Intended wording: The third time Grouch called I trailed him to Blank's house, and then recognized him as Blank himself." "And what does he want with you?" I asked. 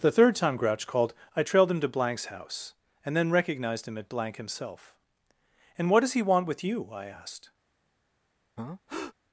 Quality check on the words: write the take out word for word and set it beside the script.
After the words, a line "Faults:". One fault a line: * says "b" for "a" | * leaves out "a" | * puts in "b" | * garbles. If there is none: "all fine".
The third time Grouch called I trailed him to Blank's house, and then recognized him at Blank himself." "And what does he want with you?" I asked.
Faults:
* says "at" for "as"